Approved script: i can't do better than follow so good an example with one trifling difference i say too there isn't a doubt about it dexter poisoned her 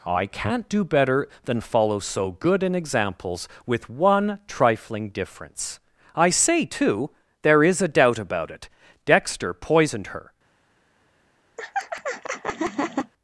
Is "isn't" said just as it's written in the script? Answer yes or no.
no